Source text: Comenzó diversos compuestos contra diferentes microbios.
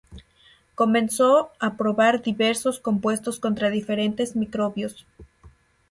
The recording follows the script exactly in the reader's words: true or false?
false